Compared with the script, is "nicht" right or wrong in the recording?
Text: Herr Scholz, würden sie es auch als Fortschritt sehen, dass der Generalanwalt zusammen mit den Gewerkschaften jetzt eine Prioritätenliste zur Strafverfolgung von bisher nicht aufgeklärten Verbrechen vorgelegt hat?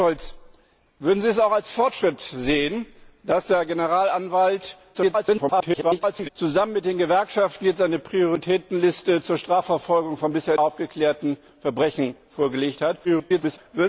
wrong